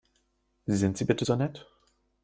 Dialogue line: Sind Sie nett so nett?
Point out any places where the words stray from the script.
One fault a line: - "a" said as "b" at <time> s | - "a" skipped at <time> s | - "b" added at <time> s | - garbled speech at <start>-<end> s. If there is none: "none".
- "nett" said as "bitte" at 1.0 s